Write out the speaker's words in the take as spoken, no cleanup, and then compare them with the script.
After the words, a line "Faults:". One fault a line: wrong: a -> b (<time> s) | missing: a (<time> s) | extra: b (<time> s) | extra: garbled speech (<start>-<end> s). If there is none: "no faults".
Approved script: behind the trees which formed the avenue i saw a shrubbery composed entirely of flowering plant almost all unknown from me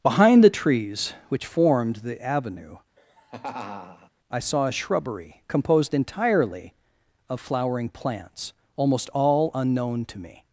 behind the trees which formed the avenue i saw a shrubbery composed entirely of flowering plants almost all unknown to me
Faults:
wrong: plant -> plants (7.9 s)
wrong: from -> to (10.0 s)